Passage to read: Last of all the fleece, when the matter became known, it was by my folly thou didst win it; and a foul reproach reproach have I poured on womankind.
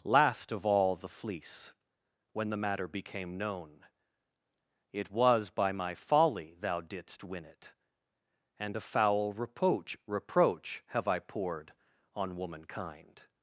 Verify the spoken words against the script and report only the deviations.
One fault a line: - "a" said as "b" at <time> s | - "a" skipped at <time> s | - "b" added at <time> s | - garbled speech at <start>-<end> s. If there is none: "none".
none